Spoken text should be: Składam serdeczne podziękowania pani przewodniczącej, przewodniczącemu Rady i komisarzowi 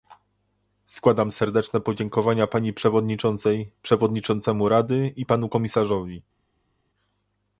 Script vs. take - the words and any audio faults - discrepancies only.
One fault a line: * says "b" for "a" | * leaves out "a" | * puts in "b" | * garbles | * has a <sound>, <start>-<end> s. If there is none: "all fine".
* puts in "panu"